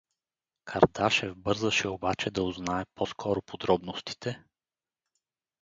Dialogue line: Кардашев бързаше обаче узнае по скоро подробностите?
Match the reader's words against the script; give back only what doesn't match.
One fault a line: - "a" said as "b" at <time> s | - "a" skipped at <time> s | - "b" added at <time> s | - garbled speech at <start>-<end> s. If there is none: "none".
- "да" added at 2.3 s